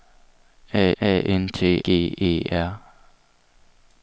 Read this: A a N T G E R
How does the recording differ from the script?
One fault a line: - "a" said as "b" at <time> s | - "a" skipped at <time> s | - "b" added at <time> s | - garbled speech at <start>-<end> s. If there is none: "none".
none